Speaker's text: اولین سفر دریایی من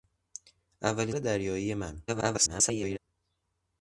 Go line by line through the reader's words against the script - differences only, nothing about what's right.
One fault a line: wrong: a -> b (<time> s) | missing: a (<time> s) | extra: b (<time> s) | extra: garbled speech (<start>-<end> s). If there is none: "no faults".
missing: سفر (1.1 s)
extra: garbled speech (2.1-3.0 s)